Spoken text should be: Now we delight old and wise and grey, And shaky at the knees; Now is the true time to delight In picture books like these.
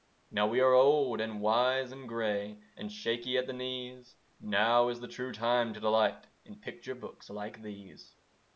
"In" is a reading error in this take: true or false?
false